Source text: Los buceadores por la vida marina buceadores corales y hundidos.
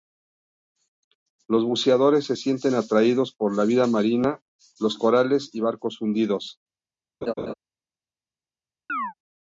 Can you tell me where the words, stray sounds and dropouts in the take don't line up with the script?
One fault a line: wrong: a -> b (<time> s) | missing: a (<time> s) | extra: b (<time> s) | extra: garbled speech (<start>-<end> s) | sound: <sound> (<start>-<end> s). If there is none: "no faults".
extra: se sienten atraídos (2.2 s)
wrong: buceadores -> los (4.8 s)
extra: barcos (5.6 s)
sound: laugh (7.2-7.5 s)
sound: chirp (8.9-9.1 s)